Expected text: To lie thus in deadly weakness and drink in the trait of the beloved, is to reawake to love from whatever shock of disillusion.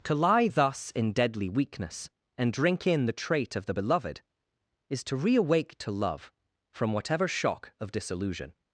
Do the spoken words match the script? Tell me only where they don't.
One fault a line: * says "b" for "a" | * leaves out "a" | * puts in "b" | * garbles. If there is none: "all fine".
all fine